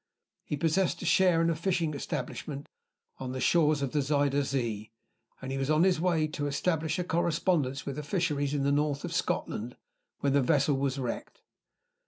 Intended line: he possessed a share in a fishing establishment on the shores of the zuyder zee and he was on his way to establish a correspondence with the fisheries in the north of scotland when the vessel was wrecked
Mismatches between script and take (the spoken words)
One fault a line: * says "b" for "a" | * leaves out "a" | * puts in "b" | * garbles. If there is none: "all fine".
all fine